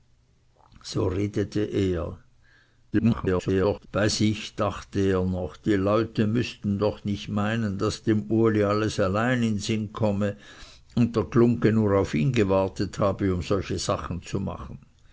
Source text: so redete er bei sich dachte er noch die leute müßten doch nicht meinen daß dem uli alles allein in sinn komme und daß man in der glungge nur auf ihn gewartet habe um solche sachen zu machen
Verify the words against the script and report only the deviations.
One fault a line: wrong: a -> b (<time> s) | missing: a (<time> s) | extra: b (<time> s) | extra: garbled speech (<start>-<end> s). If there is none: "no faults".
extra: garbled speech (2.9-3.9 s)
missing: daß man in (11.2 s)